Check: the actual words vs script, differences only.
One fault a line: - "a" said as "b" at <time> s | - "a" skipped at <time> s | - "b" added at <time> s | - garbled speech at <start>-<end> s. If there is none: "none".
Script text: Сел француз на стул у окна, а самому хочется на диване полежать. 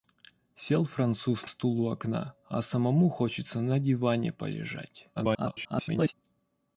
- "на" skipped at 1.5 s
- garbled speech at 5.2-6.1 s